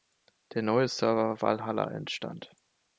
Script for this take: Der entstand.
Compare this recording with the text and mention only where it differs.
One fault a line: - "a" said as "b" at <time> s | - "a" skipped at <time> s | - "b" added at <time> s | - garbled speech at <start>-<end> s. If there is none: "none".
- "neue Server Valhalla" added at 0.6 s